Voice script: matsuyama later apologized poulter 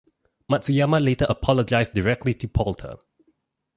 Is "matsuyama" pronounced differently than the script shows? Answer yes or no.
no